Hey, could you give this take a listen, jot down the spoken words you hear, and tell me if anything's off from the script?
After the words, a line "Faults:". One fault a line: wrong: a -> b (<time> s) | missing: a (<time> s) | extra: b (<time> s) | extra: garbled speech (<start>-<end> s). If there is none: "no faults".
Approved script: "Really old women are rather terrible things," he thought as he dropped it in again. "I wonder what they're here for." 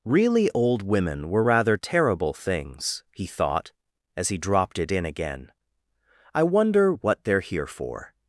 "Really old women were rather terrible things," he thought as he dropped it in again. "I wonder what they're here for."
Faults:
wrong: are -> were (1.3 s)